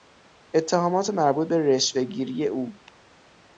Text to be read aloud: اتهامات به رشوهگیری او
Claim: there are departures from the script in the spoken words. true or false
true